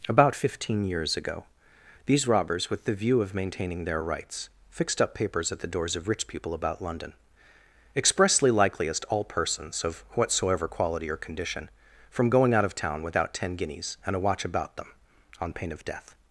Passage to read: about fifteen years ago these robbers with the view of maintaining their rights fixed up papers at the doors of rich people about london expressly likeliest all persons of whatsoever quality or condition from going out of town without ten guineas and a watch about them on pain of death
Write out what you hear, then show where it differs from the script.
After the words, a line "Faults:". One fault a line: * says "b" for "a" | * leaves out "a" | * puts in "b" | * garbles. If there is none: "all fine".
about fifteen years ago these robbers with the view of maintaining their rights fixed up papers at the doors of rich people about london expressly likeliest all persons of whatsoever quality or condition from going out of town without ten guineas and a watch about them on pain of death
Faults:
all fine